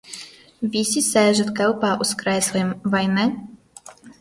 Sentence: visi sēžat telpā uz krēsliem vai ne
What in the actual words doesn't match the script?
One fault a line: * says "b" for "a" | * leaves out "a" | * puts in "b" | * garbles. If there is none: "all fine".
all fine